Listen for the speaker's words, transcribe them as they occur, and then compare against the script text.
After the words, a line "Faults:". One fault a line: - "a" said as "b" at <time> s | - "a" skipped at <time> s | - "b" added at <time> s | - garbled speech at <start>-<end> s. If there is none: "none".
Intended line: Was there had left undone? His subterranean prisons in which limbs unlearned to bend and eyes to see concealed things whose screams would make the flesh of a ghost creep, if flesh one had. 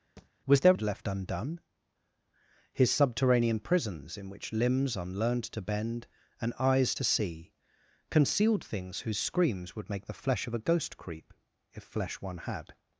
Was there had left undone? His subterranean prisons in which limbs unlearned to bend and eyes to see concealed things whose screams would make the flesh of a ghost creep, if flesh one had.
Faults:
none